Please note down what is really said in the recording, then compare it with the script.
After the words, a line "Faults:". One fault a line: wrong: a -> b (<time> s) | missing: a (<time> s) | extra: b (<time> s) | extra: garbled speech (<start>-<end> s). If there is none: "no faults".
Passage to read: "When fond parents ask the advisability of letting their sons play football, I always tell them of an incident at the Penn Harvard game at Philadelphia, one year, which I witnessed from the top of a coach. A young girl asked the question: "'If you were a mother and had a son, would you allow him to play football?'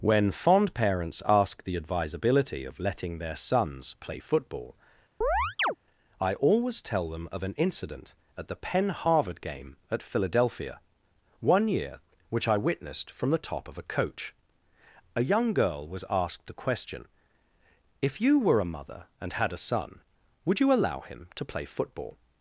"When fond parents ask the advisability of letting their sons play football, I always tell them of an incident at the Penn Harvard game at Philadelphia, one year, which I witnessed from the top of a coach. A young girl was asked the question: "'If you were a mother and had a son, would you allow him to play football?'
Faults:
extra: was (15.9 s)